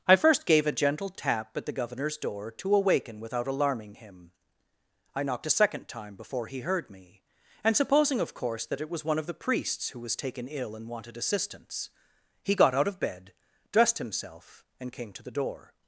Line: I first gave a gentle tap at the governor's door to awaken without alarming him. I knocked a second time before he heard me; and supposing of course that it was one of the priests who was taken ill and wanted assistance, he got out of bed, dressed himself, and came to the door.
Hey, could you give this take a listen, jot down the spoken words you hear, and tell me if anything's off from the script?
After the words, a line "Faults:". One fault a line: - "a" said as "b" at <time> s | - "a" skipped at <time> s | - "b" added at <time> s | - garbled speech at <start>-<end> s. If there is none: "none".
I first gave a gentle tap at the governor's door to awaken without alarming him. I knocked a second time before he heard me; and supposing of course that it was one of the priests who was taken ill and wanted assistance, he got out of bed, dressed himself, and came to the door.
Faults:
none